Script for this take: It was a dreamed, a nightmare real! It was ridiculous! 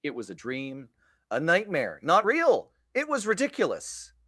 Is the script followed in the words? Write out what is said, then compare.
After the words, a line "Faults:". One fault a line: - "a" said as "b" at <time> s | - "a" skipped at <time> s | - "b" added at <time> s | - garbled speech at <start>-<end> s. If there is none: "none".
It was a dream, a nightmare not real! It was ridiculous!
Faults:
- "dreamed" said as "dream" at 0.3 s
- "not" added at 2.0 s